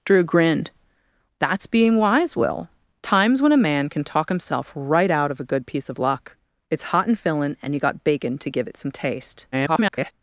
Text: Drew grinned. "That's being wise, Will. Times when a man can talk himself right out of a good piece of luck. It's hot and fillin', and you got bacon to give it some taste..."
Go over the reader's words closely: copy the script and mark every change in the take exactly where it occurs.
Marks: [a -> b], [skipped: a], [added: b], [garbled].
Drew grinned. "That's being wise, Will. Times when a man can talk himself right out of a good piece of luck. It's hot and fillin', and you got bacon to give it some taste..." [garbled]